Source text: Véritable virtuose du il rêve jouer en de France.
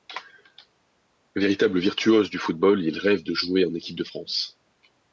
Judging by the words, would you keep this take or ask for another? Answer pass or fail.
fail